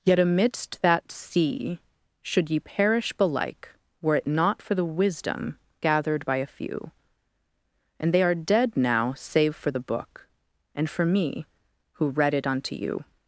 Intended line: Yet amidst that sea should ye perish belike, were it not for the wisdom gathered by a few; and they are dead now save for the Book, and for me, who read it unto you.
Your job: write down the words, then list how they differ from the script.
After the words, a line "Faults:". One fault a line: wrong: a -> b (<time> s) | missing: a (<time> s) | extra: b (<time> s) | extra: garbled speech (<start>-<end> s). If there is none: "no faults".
Yet amidst that sea should ye perish belike, were it not for the wisdom gathered by a few; and they are dead now save for the Book, and for me, who read it unto you.
Faults:
no faults